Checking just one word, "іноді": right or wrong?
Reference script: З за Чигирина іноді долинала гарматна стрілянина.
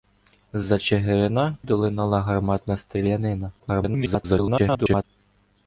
wrong